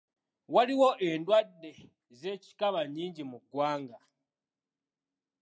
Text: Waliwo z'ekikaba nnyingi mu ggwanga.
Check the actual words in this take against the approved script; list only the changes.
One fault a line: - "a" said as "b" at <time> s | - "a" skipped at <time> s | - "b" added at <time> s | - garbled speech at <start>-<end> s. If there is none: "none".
- "endwadde" added at 1.1 s